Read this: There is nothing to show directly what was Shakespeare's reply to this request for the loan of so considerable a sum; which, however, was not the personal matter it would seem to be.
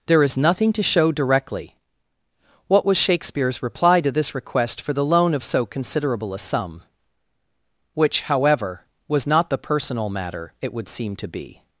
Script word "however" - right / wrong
right